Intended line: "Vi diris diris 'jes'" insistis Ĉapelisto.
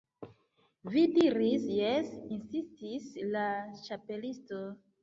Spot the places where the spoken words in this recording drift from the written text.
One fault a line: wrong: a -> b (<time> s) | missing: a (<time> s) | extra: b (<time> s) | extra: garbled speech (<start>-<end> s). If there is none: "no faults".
missing: diris (1.7 s)
extra: la (3.3 s)